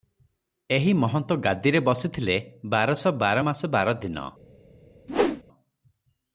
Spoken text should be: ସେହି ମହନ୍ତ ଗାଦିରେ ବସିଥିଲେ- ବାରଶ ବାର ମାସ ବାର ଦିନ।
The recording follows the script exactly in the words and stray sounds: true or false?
false